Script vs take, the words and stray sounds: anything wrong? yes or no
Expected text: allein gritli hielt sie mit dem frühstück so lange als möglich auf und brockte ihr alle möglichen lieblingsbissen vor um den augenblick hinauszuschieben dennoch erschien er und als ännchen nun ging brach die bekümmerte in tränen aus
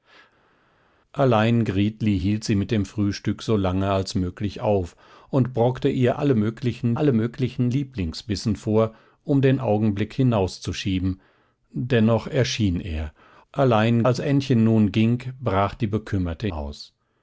yes